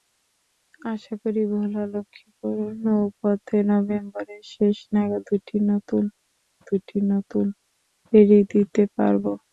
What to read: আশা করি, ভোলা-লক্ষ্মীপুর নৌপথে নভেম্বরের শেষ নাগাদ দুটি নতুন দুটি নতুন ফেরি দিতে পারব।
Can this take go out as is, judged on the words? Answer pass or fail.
pass